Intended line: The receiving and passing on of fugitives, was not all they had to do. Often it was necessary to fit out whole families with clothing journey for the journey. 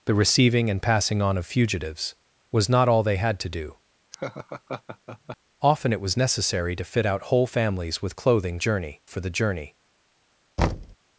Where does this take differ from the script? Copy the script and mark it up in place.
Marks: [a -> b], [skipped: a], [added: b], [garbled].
The receiving and passing on of fugitives, was not all they had to do. Often it was necessary to fit out whole families with clothing journey for the journey.